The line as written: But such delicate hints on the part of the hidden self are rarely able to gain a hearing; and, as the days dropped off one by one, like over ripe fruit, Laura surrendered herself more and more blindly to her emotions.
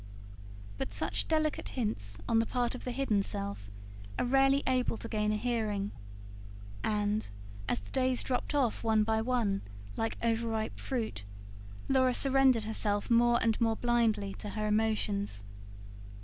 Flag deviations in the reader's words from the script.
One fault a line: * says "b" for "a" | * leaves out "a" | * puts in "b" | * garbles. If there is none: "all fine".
all fine